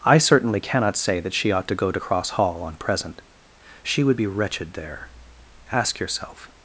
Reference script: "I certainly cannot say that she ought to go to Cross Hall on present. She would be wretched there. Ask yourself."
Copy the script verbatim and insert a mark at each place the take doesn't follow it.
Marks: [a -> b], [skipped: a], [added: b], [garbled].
"I certainly cannot say that she ought to go to Cross Hall on present. She would be wretched there. Ask yourself."